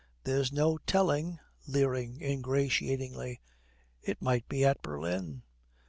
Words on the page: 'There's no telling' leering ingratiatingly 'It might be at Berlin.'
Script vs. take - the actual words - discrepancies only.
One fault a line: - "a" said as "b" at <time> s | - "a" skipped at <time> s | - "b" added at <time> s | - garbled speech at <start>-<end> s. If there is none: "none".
none